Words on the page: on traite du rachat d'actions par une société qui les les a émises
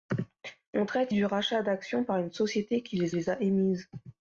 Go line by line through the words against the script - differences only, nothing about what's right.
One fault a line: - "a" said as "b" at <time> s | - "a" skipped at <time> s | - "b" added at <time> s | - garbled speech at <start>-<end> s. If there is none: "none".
none